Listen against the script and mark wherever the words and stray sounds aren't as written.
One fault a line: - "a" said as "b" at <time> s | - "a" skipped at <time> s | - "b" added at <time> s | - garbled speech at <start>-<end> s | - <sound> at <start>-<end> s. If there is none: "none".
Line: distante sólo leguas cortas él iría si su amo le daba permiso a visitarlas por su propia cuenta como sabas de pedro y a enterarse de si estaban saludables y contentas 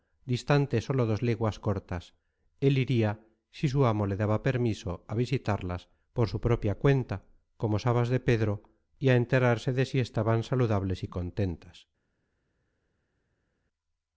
- "dos" added at 1.1 s